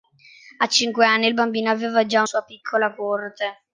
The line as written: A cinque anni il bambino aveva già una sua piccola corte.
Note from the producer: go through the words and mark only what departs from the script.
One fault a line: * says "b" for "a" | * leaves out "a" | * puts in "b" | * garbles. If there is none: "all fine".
* leaves out "una"